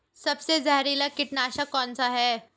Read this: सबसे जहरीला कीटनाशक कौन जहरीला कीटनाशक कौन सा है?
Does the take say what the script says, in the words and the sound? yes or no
no